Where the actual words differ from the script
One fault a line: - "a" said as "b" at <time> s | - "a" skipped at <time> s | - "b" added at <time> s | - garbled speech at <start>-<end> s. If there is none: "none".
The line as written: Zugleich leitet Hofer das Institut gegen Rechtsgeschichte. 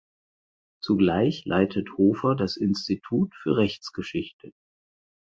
- "gegen" said as "für" at 3.4 s